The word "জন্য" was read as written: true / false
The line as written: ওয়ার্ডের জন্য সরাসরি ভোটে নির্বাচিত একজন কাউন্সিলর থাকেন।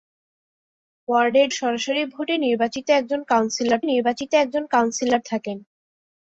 false